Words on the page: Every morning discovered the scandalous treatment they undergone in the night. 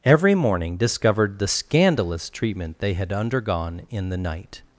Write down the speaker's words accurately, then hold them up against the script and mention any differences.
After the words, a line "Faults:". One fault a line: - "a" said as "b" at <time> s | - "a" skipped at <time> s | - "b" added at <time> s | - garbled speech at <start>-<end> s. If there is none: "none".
Every morning discovered the scandalous treatment they had undergone in the night.
Faults:
- "had" added at 2.9 s